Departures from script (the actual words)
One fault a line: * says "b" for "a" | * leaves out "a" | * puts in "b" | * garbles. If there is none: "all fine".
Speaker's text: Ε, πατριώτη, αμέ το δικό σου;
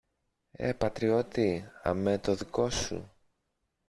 all fine